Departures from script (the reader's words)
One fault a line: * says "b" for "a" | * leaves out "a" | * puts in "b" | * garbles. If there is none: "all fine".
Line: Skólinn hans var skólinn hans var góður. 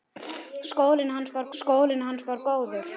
all fine